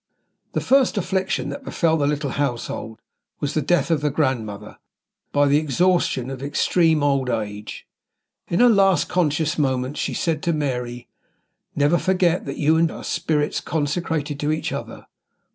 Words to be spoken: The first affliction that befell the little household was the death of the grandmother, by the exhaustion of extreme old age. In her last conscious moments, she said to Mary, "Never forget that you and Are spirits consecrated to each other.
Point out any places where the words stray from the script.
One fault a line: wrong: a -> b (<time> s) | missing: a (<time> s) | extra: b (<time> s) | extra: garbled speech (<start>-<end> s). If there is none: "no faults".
no faults